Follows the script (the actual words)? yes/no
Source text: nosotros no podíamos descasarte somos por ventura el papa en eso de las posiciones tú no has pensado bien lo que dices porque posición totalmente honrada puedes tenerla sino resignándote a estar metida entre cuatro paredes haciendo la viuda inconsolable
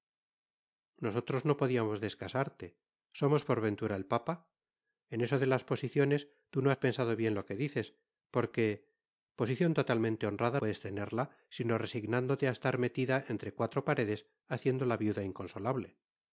yes